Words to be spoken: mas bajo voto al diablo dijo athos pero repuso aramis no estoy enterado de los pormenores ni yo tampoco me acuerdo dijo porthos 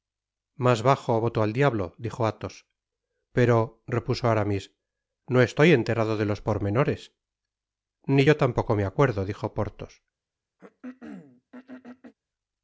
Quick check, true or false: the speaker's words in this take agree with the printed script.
true